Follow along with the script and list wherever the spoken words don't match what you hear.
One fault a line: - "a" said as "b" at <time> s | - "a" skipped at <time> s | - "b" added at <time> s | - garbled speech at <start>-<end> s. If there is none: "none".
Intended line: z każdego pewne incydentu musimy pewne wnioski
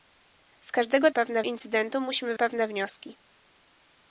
none